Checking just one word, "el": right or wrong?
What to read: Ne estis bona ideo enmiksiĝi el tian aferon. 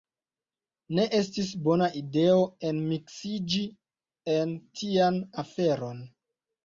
wrong